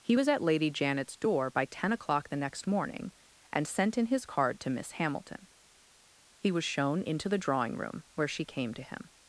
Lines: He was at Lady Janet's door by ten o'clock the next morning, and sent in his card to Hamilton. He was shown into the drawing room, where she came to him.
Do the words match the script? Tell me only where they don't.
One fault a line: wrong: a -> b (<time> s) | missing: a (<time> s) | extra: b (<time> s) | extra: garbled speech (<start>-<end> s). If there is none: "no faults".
extra: Miss (4.7 s)